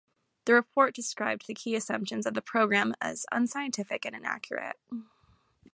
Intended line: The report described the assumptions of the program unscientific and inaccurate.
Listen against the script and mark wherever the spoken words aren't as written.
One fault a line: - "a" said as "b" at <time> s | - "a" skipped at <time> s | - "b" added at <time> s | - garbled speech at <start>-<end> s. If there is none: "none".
- "key" added at 1.5 s
- "as" added at 3.0 s